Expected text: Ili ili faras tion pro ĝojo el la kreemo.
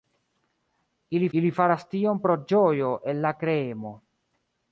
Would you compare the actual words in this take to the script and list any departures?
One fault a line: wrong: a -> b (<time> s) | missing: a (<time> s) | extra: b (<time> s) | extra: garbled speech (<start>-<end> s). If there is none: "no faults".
no faults